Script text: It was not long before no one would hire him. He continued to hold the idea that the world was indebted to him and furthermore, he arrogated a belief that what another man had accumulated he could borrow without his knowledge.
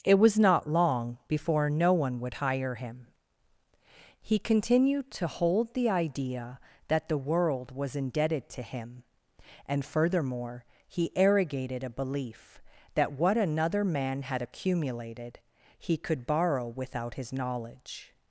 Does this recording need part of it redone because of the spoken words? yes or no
no